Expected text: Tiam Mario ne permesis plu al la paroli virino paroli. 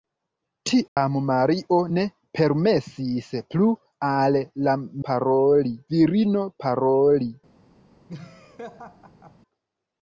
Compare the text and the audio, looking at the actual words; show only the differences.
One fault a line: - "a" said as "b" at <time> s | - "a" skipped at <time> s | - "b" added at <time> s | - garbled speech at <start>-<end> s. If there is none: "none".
none